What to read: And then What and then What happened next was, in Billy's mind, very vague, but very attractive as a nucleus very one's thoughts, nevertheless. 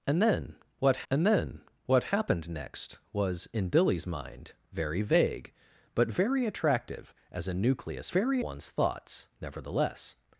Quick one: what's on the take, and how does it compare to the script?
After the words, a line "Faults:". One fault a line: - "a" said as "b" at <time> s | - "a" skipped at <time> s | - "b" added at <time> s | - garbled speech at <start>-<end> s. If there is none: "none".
And then What and then What happened next was, in Billy's mind, very vague, but very attractive as a nucleus very one's thoughts, nevertheless.
Faults:
none